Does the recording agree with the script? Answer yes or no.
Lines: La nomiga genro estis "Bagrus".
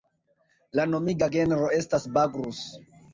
no